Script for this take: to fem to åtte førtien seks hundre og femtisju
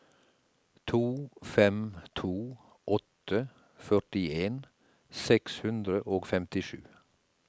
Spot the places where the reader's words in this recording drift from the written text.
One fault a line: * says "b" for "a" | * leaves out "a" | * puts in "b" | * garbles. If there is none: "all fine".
all fine